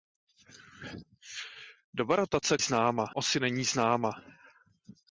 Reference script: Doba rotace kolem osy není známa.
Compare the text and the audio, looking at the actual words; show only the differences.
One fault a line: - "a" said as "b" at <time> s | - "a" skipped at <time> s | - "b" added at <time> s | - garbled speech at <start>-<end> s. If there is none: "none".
- "kolem" said as "známa" at 2.6 s